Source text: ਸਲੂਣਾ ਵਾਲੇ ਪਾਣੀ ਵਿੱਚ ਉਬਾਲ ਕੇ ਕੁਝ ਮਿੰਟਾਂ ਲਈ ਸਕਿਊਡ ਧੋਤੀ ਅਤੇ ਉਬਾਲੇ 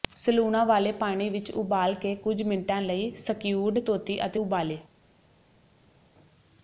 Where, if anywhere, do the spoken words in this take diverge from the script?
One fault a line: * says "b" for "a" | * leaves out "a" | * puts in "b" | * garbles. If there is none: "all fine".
all fine